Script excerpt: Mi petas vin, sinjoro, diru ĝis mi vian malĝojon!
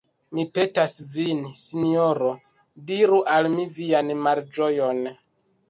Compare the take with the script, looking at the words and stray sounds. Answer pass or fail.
fail